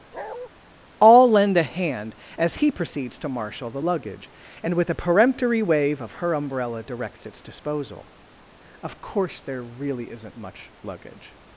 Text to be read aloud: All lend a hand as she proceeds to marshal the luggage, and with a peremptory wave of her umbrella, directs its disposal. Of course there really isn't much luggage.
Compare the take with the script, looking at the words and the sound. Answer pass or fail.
fail